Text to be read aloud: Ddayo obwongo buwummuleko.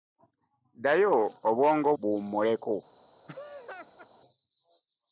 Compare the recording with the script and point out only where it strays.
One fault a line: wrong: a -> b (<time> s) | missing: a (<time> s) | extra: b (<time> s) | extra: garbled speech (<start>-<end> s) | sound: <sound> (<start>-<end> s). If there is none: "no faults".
sound: laugh (3.3-4.1 s)